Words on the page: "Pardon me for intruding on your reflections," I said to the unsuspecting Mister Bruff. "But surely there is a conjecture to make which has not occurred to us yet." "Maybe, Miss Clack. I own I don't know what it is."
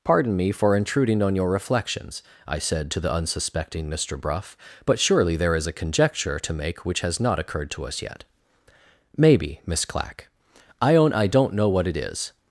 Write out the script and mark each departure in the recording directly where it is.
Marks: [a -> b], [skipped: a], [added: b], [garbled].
"Pardon me for intruding on your reflections," I said to the unsuspecting Mister Bruff. "But surely there is a conjecture to make which has not occurred to us yet." "Maybe, Miss Clack. I own I don't know what it is."